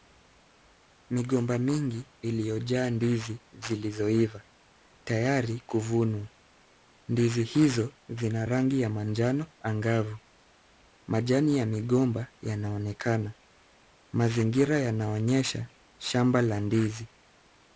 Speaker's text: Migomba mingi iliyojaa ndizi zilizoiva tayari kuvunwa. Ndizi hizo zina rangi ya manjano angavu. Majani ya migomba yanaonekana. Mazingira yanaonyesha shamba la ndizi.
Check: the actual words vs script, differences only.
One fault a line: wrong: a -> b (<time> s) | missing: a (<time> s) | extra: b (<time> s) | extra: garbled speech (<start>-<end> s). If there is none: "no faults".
no faults